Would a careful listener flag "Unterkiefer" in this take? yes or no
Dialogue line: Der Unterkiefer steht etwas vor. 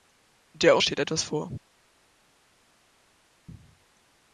yes